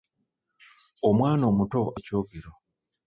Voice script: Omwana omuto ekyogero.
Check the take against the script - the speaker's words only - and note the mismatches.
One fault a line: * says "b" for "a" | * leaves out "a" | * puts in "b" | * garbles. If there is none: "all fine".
all fine